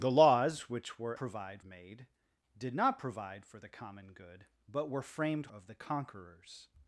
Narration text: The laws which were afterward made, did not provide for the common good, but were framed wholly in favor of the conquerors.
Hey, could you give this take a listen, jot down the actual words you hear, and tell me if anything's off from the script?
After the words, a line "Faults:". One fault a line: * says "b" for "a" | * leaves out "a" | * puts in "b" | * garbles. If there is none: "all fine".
The laws which were provide made, did not provide for the common good, but were framed of the conquerors.
Faults:
* says "provide" for "afterward"
* leaves out "wholly in favor"